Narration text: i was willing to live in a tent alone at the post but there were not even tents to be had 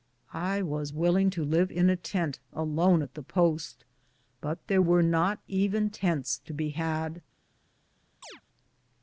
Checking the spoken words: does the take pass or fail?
pass